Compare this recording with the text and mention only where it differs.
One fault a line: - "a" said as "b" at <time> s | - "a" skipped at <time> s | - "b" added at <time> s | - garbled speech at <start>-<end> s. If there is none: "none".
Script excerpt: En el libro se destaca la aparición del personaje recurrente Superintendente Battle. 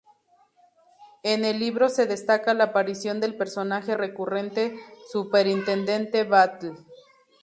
none